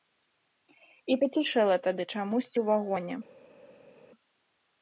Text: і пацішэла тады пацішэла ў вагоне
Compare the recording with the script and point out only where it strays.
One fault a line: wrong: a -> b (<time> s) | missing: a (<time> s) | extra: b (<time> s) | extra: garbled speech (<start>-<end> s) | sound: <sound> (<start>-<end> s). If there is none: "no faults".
wrong: пацішэла -> чамусьці (2.1 s)